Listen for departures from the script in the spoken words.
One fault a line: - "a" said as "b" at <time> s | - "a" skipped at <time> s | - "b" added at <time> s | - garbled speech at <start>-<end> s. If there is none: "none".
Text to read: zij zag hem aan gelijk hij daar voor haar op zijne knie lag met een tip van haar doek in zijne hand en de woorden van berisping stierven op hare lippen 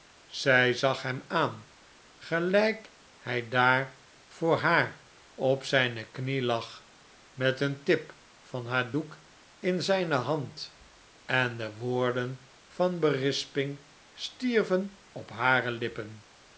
none